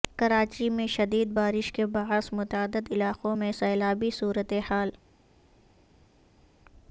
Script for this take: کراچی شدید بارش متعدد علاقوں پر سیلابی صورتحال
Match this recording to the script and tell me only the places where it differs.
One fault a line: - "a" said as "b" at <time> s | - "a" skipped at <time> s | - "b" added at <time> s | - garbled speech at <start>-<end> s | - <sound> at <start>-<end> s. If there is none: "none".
- "میں" added at 0.7 s
- "کے باعث" added at 1.7 s
- "پر" said as "میں" at 3.3 s